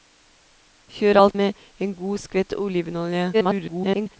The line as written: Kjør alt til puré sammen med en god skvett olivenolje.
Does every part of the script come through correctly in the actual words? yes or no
no